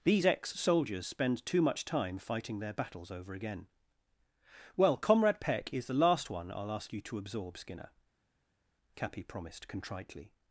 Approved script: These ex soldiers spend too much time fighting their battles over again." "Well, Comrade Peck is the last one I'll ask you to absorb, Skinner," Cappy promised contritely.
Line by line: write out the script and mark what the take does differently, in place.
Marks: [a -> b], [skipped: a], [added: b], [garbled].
These ex soldiers spend too much time fighting their battles over again." "Well, Comrade Peck is the last one I'll ask you to absorb, Skinner," Cappy promised contritely.